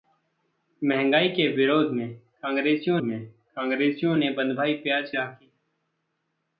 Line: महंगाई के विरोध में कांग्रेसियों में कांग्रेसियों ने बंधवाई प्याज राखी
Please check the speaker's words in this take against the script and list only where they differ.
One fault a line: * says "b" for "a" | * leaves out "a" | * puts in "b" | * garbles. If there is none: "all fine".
all fine